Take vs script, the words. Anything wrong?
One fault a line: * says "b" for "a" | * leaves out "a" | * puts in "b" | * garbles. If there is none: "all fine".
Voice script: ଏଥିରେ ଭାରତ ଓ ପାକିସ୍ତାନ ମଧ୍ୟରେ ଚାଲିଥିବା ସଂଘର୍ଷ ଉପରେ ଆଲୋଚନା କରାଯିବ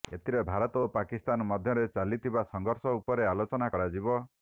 all fine